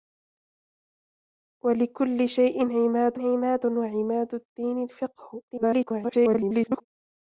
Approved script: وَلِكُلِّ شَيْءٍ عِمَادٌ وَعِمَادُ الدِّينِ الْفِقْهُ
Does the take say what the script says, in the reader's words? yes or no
no